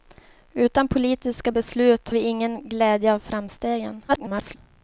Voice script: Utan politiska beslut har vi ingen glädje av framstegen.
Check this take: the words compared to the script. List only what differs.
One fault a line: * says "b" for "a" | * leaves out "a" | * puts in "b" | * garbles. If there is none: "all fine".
* leaves out "har"
* garbles